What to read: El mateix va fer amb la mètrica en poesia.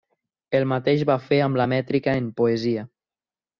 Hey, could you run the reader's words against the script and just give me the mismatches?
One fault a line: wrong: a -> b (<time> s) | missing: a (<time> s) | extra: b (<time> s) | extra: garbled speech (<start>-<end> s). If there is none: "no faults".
no faults